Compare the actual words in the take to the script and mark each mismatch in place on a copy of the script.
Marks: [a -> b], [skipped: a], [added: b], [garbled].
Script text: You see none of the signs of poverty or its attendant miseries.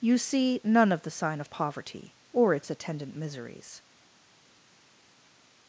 You see none of the [signs -> sign] of poverty or its attendant miseries.